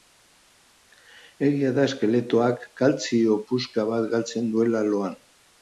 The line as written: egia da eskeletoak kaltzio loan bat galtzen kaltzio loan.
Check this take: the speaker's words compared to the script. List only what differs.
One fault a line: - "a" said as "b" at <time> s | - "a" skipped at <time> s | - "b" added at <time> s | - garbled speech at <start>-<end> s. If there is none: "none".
- "loan" said as "puska" at 3.5 s
- "kaltzio" said as "duela" at 4.6 s